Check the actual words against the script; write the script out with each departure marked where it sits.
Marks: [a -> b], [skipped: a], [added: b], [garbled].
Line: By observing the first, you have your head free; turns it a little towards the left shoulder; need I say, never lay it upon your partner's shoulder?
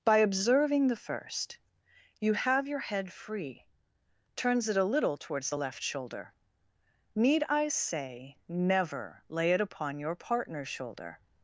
By observing the first, you have your head free; turns it a little towards the left shoulder; need I say, never lay it upon your partner's shoulder?